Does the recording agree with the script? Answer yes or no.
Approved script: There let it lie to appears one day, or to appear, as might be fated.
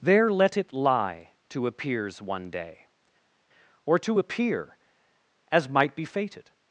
yes